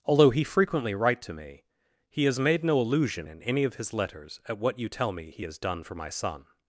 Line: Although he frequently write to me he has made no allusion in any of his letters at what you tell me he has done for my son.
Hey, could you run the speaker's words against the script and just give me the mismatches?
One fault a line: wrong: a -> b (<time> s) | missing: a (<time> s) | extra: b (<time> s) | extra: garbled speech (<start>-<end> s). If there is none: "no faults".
no faults